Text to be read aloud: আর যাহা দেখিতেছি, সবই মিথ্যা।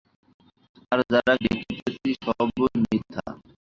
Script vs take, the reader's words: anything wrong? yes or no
no